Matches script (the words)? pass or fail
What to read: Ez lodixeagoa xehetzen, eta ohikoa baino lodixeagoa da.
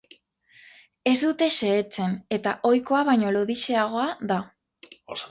fail